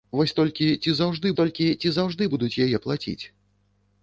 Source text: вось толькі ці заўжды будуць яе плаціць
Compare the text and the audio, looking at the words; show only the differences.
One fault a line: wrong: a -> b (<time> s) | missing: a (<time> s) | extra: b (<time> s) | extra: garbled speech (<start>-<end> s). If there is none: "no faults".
extra: толькі ці заўжды (1.4 s)